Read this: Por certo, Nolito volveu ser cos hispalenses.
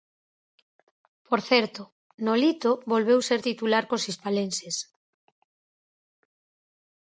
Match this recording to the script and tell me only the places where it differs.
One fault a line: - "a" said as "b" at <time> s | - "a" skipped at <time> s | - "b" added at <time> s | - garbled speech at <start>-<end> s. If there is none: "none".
- "titular" added at 3.5 s